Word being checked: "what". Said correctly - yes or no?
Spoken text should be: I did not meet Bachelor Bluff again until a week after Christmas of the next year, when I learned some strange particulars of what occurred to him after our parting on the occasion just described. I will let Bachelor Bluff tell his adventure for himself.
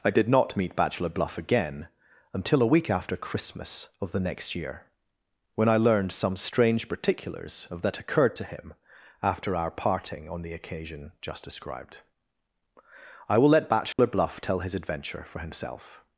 no